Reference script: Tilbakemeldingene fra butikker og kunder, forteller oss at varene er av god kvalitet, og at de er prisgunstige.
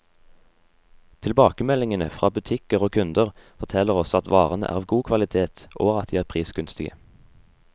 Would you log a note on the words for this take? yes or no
no